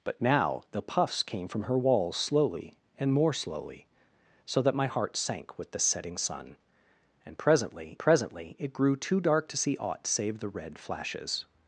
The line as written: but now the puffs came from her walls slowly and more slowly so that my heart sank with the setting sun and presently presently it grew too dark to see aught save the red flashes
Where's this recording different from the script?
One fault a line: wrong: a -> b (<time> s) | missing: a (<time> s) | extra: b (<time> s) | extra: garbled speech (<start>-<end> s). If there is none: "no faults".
no faults